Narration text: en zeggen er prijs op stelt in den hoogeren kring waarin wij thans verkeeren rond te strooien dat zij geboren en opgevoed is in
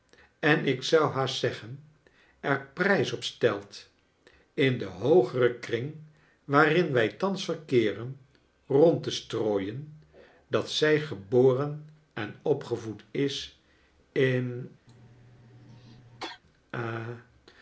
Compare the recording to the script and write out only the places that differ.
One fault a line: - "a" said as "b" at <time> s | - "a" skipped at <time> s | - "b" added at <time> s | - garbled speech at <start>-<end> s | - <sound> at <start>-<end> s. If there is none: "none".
- "ik zou haast" added at 0.7 s
- cough at 14.9-16.4 s